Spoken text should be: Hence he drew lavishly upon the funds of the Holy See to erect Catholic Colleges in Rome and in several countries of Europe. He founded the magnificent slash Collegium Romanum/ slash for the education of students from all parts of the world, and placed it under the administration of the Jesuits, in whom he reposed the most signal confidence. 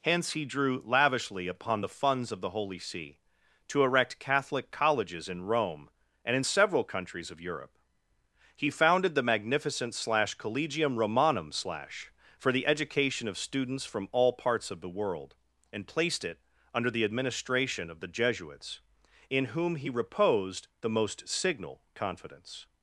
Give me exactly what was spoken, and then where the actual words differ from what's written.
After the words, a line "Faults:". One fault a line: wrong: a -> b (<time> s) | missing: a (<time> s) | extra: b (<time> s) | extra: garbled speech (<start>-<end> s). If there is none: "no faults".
Hence he drew lavishly upon the funds of the Holy See to erect Catholic Colleges in Rome and in several countries of Europe. He founded the magnificent slash Collegium Romanum/ slash for the education of students from all parts of the world, and placed it under the administration of the Jesuits, in whom he reposed the most signal confidence.
Faults:
no faults